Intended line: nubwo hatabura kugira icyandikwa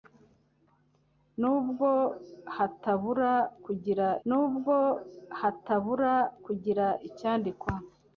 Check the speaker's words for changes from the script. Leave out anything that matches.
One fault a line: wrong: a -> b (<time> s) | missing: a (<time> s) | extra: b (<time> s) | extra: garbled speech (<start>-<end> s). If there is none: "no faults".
extra: nubwo hatabura kugira (4.3 s)